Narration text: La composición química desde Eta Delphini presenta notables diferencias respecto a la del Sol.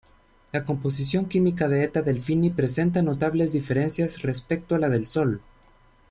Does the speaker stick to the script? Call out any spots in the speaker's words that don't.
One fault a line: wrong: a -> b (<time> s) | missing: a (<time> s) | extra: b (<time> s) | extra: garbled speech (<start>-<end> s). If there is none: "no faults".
wrong: desde -> de (1.7 s)